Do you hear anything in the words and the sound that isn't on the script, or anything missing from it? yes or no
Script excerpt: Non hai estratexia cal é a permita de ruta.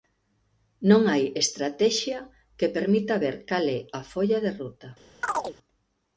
yes